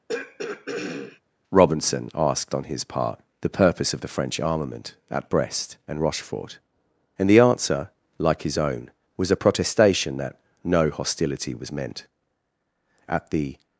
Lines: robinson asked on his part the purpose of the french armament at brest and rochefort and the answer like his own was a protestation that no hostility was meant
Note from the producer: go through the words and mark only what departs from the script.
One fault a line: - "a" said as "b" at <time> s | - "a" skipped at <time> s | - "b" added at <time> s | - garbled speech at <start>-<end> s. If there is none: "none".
- "at the" added at 13.1 s